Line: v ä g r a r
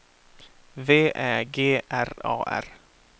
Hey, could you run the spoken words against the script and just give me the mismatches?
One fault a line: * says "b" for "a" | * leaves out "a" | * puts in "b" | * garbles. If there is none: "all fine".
all fine